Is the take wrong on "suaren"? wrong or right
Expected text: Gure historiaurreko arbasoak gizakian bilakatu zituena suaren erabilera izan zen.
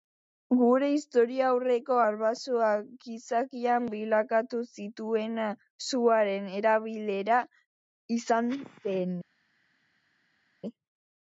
right